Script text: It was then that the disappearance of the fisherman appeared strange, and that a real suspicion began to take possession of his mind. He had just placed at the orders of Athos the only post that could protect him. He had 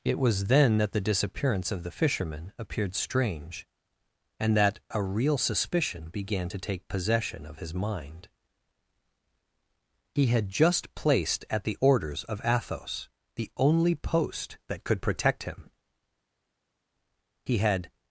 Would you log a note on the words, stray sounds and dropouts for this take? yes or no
no